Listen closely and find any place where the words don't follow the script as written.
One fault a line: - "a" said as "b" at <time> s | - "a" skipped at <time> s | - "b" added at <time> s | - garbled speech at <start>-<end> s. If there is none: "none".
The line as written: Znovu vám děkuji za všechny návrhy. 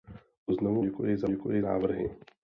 - "vám" skipped at 0.8 s
- "všechny" said as "děkuji" at 1.3 s